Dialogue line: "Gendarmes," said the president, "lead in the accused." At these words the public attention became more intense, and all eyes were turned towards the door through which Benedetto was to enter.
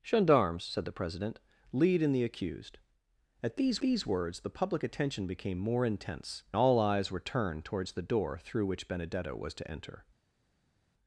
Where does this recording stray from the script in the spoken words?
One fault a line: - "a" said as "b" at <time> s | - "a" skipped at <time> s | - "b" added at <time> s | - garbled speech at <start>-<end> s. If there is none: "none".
- "these" added at 3.8 s
- "and" skipped at 6.4 s